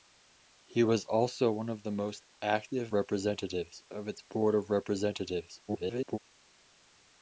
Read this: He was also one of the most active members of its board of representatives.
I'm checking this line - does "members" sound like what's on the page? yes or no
no